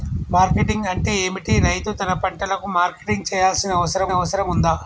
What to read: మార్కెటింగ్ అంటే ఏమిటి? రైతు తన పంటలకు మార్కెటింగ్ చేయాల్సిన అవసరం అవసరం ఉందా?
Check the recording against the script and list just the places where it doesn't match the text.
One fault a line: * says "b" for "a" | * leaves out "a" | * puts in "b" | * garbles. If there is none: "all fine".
all fine